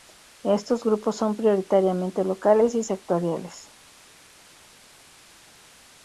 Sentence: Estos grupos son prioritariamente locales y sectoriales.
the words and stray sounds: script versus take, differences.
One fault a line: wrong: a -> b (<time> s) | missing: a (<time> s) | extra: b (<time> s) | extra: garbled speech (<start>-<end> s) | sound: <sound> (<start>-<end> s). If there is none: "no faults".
no faults